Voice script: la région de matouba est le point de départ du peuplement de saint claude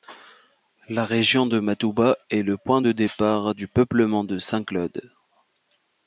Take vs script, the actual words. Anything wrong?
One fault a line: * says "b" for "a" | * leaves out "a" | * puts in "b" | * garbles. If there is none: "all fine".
all fine